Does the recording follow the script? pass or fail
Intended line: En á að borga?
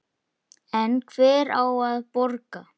fail